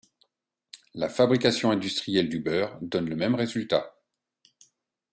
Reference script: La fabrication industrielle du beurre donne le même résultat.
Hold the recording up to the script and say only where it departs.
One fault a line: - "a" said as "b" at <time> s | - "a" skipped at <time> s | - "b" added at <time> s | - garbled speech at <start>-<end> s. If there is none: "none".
none